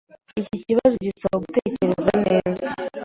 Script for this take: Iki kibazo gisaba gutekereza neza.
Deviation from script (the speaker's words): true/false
false